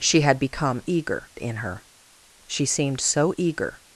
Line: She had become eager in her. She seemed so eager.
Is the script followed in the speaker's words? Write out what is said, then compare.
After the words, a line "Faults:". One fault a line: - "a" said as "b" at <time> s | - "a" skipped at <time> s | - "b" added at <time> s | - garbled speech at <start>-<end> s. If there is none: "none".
She had become eager in her. She seemed so eager.
Faults:
none